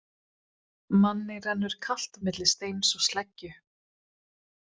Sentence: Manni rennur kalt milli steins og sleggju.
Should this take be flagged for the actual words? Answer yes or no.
no